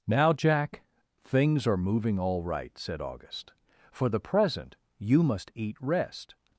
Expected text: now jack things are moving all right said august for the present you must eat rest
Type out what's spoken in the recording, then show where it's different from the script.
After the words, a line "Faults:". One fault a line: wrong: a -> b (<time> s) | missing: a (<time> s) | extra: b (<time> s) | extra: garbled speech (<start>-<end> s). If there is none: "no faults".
now jack things are moving all right said august for the present you must eat rest
Faults:
no faults